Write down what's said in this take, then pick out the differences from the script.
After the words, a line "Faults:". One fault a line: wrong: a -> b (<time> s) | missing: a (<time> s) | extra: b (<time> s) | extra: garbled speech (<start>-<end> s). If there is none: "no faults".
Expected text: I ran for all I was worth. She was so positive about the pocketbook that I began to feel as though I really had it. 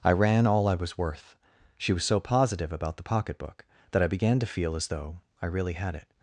I ran all I was worth. She was so positive about the pocketbook that I began to feel as though I really had it.
Faults:
missing: for (0.5 s)